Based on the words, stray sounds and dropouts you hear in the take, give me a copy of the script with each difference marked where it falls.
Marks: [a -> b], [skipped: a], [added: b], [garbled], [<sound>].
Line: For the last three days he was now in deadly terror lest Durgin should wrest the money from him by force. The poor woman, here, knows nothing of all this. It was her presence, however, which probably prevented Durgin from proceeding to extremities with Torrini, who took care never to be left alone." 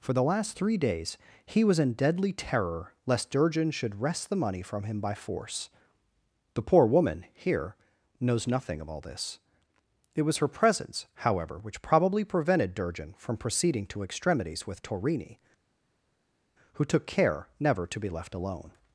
For the last three days he was [skipped: now] in deadly terror lest Durgin should wrest the money from him by force. The poor woman, here, knows nothing of all this. It was her presence, however, which probably prevented Durgin from proceeding to extremities with Torrini, who took care never to be left alone."